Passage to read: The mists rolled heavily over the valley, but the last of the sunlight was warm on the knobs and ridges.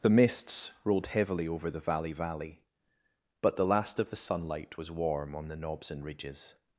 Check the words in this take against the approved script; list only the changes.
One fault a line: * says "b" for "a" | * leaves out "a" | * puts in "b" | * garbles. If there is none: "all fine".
* puts in "valley"